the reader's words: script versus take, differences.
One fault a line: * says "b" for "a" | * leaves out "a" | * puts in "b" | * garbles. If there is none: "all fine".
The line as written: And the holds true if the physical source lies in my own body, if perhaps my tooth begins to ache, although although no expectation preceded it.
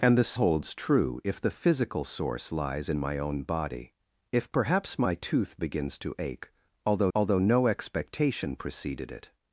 all fine